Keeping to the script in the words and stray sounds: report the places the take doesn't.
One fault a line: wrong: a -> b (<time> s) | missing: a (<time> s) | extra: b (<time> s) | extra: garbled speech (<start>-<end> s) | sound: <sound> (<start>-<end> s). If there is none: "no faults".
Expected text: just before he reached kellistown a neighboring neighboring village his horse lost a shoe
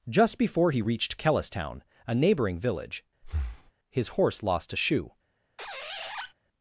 missing: neighboring (2.6 s)
sound: breath (3.2-3.7 s)
sound: squeak (5.6-6.3 s)